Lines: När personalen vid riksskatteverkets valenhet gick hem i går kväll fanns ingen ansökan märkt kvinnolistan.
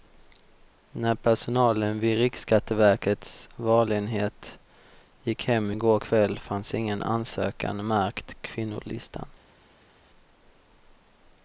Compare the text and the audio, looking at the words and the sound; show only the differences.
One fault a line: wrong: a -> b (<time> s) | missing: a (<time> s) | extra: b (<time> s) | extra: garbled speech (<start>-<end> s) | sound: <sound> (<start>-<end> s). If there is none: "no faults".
no faults